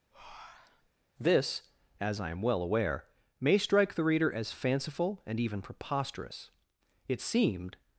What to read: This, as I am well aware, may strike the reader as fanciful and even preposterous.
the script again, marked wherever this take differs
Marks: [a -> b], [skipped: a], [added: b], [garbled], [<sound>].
[breath] This, as I am well aware, may strike the reader as fanciful and even preposterous. [added: It seemed]